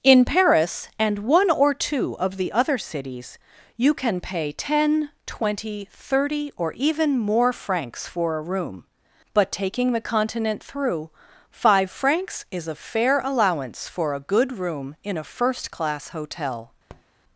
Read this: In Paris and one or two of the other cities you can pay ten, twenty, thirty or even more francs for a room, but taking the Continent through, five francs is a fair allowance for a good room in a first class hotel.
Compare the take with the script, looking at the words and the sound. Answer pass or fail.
fail